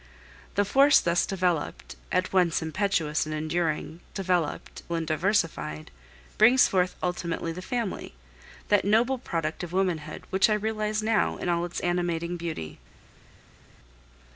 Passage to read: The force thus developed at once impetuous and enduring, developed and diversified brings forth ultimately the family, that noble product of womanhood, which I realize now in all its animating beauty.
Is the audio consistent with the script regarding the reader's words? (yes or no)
yes